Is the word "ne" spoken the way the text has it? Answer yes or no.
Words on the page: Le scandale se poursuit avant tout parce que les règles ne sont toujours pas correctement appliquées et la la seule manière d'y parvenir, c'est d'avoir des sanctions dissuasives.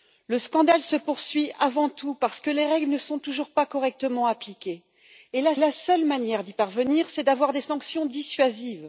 yes